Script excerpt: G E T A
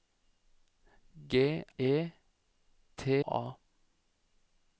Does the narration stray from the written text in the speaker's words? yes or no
no